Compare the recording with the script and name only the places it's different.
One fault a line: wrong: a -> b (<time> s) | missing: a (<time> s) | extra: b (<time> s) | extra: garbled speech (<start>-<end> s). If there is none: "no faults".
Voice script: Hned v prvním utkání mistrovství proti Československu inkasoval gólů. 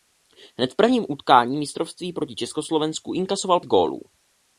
no faults